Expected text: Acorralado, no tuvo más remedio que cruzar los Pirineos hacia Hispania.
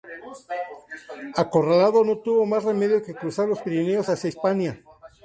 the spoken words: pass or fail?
pass